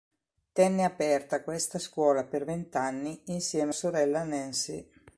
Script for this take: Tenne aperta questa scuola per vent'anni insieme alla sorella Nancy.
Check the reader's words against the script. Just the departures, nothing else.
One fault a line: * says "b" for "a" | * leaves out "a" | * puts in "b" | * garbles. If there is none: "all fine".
* leaves out "alla"